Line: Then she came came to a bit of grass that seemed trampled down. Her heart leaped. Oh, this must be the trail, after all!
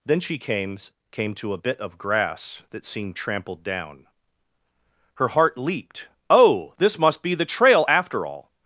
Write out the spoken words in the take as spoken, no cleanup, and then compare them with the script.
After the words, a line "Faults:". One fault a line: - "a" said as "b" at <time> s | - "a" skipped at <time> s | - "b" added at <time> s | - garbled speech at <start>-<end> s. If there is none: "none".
Then she came came to a bit of grass that seemed trampled down. Her heart leaped. Oh, this must be the trail, after all!
Faults:
none